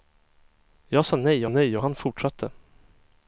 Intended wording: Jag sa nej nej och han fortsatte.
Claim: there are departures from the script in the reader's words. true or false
false